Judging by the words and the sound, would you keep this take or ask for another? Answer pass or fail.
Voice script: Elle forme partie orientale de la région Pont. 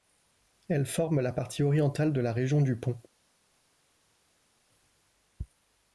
fail